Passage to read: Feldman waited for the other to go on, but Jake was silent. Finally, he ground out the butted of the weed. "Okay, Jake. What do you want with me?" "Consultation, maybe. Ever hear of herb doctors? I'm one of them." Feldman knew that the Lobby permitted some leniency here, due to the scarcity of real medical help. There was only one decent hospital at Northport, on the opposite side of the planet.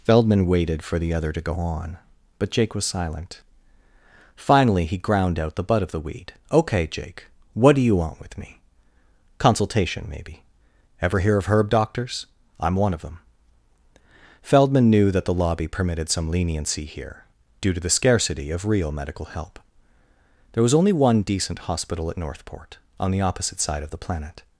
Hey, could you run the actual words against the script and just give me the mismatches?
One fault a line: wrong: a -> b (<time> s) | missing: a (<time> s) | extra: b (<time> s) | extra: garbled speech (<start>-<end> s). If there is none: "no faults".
wrong: butted -> butt (5.6 s)